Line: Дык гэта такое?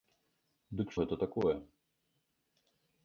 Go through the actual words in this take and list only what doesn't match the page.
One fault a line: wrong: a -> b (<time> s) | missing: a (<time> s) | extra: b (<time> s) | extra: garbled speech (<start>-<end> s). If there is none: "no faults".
no faults